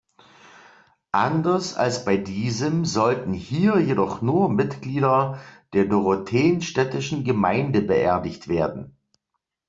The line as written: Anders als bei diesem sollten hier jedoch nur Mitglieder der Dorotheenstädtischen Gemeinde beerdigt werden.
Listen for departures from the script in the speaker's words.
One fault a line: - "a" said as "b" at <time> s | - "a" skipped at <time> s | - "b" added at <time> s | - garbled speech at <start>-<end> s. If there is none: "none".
none